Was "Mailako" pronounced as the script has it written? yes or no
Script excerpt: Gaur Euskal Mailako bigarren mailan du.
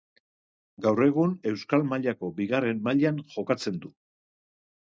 yes